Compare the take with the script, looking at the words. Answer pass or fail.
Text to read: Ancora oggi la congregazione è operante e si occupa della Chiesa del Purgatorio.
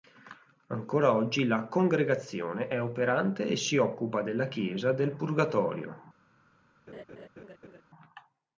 pass